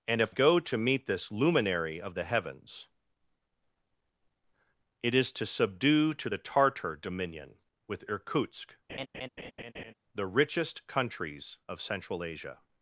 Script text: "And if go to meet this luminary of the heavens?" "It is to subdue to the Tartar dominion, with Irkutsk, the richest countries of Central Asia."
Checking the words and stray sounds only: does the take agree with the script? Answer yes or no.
no